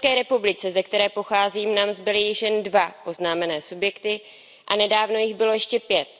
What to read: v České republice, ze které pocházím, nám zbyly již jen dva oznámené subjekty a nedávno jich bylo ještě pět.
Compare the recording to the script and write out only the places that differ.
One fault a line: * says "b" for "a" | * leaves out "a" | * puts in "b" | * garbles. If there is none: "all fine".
all fine